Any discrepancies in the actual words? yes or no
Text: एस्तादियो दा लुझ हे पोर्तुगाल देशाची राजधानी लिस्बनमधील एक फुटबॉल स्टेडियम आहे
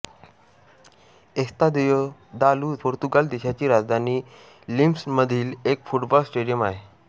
yes